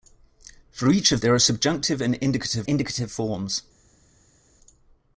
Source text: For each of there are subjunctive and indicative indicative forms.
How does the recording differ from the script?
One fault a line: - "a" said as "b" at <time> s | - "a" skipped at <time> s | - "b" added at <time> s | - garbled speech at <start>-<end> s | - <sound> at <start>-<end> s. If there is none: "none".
none